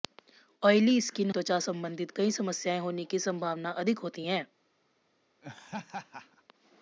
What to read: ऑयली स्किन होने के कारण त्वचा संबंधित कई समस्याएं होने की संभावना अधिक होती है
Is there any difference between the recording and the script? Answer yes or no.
yes